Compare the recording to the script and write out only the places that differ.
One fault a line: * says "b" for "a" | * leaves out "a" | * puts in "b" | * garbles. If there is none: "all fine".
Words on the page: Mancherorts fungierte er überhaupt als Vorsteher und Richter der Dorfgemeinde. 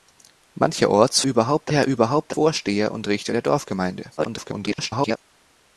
* says "überhaupt" for "fungierte"
* leaves out "als"
* garbles